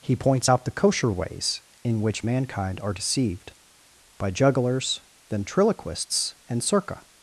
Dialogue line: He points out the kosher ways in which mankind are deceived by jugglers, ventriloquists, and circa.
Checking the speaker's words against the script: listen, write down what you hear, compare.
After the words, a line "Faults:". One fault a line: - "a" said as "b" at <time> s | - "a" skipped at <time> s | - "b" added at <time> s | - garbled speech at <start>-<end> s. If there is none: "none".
He points out the kosher ways in which mankind are deceived by jugglers, ventriloquists, and circa.
Faults:
none